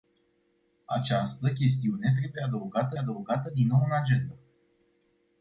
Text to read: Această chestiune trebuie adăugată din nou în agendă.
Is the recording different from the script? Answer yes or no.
yes